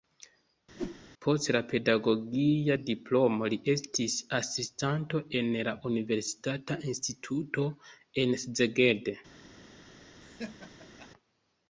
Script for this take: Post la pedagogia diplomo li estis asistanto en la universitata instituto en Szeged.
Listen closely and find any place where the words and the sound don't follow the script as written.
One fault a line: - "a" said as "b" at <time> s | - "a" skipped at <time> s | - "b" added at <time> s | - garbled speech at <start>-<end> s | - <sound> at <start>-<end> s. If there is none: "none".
- whoosh at 0.8-1.0 s
- laugh at 10.2-11.1 s